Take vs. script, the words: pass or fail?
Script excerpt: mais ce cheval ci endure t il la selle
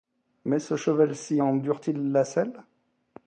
pass